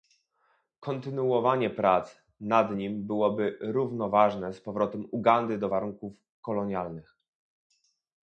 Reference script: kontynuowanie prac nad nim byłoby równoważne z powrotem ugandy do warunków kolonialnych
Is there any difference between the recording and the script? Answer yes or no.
no